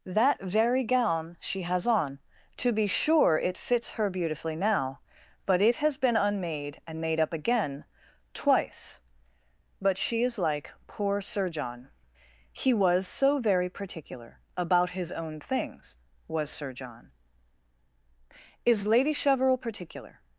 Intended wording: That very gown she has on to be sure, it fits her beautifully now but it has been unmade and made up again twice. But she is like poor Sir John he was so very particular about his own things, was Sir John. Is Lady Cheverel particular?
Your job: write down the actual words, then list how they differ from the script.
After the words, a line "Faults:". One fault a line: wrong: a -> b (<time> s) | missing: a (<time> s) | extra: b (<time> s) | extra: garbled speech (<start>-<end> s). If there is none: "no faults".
That very gown she has on to be sure, it fits her beautifully now but it has been unmade and made up again twice. But she is like poor Sir John he was so very particular about his own things, was Sir John. Is Lady Cheverel particular?
Faults:
no faults